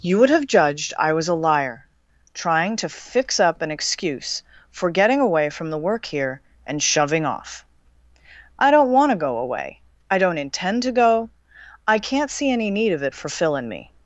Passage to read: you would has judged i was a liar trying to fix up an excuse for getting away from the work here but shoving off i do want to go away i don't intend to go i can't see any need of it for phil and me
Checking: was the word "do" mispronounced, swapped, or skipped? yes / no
yes